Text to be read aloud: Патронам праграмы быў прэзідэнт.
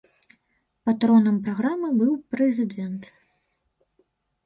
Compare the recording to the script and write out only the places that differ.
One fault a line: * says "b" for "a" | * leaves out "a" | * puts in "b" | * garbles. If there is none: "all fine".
all fine